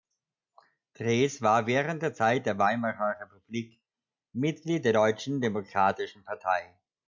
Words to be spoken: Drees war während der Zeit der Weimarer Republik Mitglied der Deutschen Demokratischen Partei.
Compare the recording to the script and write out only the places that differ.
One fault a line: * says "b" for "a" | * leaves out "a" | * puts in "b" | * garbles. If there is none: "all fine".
all fine